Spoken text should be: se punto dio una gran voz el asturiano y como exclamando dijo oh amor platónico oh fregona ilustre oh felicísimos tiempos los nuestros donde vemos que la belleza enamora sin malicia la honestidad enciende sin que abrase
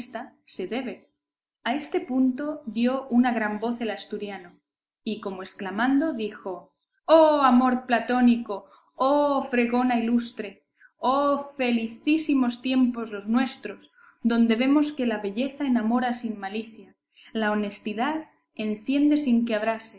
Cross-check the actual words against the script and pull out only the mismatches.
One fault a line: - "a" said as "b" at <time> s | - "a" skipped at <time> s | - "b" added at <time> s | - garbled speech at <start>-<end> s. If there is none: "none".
- "debe a este" added at 0.7 s